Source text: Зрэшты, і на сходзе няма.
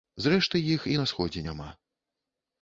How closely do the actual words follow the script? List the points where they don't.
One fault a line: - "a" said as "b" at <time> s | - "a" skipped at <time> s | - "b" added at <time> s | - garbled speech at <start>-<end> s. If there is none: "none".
- "іх" added at 0.8 s